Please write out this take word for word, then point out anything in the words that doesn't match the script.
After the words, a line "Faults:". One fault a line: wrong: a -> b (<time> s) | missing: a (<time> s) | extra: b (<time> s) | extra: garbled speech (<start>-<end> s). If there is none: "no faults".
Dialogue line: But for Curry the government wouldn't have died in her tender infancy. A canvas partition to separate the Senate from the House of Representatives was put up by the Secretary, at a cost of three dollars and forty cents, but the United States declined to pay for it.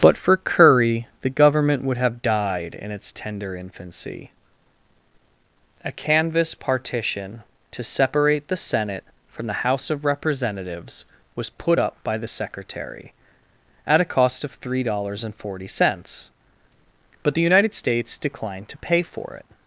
But for Curry the government would have died in its tender infancy. A canvas partition to separate the Senate from the House of Representatives was put up by the Secretary, at a cost of three dollars and forty cents, but the United States declined to pay for it.
Faults:
wrong: wouldn't -> would (1.8 s)
wrong: her -> its (2.9 s)